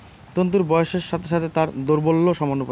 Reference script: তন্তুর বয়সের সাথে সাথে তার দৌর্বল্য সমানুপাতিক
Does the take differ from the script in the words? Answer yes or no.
no